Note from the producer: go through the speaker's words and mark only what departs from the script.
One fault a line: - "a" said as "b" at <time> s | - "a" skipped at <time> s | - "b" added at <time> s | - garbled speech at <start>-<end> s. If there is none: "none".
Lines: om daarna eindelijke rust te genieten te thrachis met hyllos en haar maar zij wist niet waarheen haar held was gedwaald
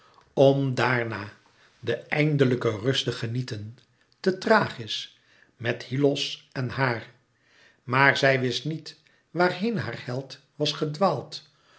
- "de" added at 1.8 s